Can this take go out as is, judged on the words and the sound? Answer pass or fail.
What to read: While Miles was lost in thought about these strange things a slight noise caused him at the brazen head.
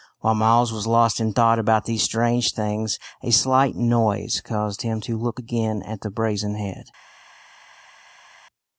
fail